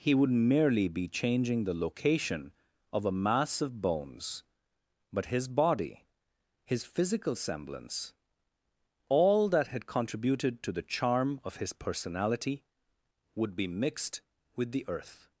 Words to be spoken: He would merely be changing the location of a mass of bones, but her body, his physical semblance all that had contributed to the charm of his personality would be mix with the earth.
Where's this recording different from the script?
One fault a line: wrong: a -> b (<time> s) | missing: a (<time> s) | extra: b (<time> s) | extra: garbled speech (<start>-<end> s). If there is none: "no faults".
wrong: her -> his (5.3 s)
wrong: mix -> mixed (13.7 s)